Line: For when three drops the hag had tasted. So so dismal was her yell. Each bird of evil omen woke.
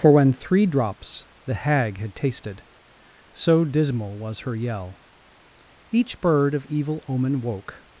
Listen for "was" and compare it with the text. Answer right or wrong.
right